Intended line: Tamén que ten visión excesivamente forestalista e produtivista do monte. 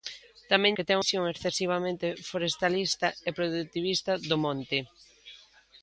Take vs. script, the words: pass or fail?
pass